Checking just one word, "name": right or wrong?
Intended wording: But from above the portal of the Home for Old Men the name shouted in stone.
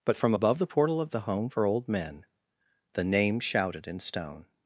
right